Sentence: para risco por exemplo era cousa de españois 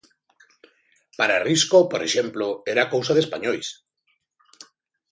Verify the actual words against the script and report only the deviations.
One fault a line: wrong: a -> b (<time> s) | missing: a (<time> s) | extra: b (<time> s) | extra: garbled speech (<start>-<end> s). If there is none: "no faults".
no faults